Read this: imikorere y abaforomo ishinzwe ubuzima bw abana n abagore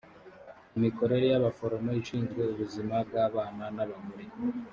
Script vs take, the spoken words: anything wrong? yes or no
no